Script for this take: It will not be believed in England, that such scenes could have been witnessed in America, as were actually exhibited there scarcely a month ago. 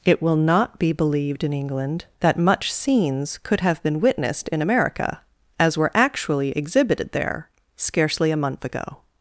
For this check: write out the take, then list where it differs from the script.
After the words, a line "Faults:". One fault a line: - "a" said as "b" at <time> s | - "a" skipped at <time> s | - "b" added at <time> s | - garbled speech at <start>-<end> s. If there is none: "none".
It will not be believed in England, that much scenes could have been witnessed in America, as were actually exhibited there scarcely a month ago.
Faults:
- "such" said as "much" at 2.4 s